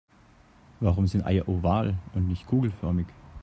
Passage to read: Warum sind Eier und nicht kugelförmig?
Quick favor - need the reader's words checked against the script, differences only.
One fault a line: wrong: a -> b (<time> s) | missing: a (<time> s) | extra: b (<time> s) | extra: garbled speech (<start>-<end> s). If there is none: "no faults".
extra: oval (1.5 s)